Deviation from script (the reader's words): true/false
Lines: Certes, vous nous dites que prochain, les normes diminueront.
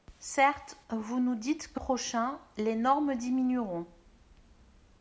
false